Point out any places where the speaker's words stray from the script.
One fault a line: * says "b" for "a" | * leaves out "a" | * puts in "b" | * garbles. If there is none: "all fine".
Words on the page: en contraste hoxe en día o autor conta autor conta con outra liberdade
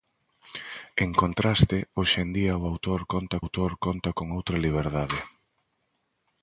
all fine